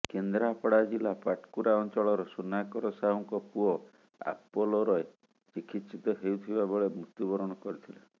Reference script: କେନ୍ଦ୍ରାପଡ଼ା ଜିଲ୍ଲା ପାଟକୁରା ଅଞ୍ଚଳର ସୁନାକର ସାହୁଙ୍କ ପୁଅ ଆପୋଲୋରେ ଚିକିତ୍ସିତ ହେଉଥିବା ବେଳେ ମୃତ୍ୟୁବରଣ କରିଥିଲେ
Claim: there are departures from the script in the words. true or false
false